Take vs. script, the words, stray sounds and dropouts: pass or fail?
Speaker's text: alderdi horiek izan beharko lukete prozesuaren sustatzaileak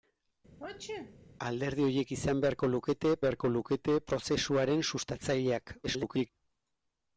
fail